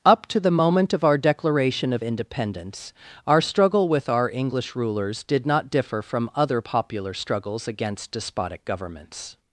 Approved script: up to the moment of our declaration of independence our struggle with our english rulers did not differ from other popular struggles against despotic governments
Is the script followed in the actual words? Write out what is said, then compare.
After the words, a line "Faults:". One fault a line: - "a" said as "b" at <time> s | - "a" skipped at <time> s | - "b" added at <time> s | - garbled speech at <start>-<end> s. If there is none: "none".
up to the moment of our declaration of independence our struggle with our english rulers did not differ from other popular struggles against despotic governments
Faults:
none